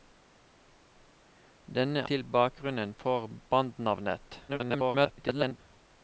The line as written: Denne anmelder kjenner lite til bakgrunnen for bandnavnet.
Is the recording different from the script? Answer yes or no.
yes